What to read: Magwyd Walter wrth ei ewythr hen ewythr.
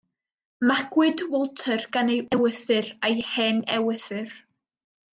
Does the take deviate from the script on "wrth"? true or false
true